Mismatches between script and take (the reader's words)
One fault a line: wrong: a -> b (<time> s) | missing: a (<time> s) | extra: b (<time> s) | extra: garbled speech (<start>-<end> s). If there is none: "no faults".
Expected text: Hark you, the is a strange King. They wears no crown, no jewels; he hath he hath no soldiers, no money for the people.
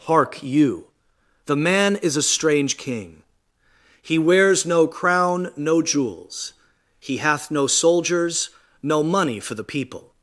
extra: man (1.6 s)
wrong: They -> He (4.0 s)
missing: he hath (7.5 s)